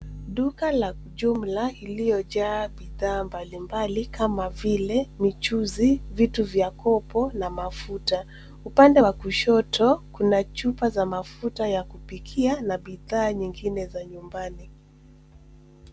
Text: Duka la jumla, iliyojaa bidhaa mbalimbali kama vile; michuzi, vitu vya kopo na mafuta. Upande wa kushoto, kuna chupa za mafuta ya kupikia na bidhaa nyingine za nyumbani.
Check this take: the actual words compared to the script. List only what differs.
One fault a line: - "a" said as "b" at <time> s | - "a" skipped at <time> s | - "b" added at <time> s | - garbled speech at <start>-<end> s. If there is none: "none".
none